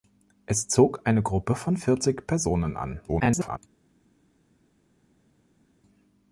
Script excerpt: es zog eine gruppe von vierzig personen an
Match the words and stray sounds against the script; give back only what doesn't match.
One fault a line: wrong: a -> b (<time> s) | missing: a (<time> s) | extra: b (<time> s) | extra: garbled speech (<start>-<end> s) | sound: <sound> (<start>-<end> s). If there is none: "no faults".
extra: garbled speech (3.1-3.6 s)